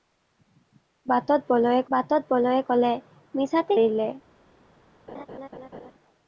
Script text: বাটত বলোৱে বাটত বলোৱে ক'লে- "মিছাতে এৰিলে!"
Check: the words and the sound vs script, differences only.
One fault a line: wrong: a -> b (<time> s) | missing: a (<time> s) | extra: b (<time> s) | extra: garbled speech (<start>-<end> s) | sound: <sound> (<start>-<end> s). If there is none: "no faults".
sound: laugh (5.1-5.9 s)